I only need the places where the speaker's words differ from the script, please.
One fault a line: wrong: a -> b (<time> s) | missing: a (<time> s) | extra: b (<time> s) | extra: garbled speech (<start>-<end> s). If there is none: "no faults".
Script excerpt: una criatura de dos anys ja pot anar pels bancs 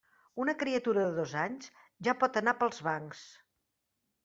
no faults